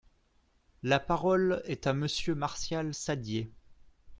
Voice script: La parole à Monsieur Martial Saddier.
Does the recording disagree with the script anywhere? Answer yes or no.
yes